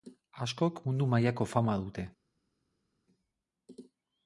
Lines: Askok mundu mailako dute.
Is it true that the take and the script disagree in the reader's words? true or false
true